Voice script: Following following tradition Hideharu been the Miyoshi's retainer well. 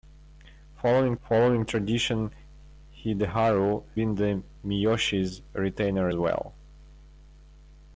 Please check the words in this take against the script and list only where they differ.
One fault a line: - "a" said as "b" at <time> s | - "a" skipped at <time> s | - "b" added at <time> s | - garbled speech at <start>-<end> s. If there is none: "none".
none